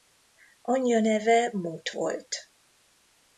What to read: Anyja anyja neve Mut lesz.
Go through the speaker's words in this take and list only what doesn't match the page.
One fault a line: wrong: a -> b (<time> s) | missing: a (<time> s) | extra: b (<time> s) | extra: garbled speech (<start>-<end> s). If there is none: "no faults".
missing: anyja (1.0 s)
wrong: lesz -> volt (1.9 s)